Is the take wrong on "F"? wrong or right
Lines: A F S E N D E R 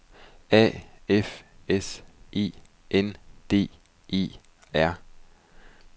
right